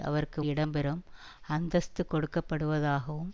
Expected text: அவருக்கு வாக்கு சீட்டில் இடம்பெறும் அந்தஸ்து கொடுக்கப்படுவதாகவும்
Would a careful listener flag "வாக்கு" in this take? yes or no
yes